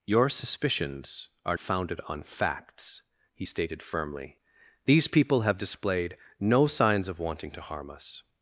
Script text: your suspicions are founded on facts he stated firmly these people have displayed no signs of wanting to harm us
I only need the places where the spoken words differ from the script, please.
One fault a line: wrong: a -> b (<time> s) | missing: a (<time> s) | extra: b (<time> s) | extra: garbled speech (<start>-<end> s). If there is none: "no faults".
no faults